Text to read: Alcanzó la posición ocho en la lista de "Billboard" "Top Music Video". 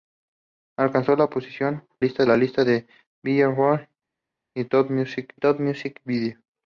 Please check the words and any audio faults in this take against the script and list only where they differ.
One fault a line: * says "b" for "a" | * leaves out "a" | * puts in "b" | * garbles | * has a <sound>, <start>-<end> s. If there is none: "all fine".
* says "lista" for "ocho"
* puts in "top Music"